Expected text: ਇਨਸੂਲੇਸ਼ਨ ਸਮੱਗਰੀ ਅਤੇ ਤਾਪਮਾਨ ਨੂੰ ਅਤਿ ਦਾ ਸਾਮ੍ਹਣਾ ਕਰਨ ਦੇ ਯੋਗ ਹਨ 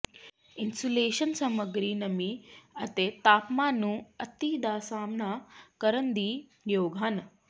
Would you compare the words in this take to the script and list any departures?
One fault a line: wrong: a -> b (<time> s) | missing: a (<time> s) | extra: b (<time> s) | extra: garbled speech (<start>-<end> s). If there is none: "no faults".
extra: ਨਮੀ (1.9 s)